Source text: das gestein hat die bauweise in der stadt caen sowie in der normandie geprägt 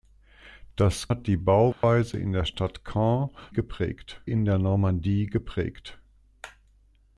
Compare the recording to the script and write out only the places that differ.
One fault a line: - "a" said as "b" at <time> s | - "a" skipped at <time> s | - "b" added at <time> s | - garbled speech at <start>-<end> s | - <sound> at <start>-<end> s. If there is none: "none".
- "gestein" skipped at 1.1 s
- dropout at 1.7-1.8 s
- "sowie" said as "geprägt" at 3.5 s